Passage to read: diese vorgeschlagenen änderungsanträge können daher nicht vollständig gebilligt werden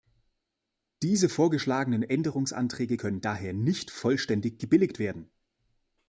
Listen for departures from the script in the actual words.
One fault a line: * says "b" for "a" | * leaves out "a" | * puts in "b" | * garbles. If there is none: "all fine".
all fine